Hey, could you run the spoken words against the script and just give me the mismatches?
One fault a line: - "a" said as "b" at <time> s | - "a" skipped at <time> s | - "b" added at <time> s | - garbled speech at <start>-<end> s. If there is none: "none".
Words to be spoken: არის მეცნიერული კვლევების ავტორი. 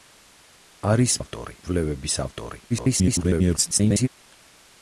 - "მეცნიერული" said as "ავტორი" at 1.2 s
- garbled speech at 2.7-4.1 s